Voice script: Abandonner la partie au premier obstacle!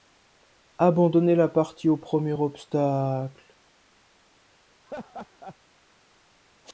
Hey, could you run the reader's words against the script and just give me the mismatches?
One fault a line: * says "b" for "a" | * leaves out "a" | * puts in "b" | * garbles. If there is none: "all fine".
all fine